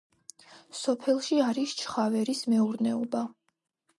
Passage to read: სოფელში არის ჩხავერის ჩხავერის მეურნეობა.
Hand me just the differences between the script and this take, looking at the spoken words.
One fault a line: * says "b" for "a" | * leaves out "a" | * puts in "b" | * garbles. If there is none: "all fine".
* leaves out "ჩხავერის"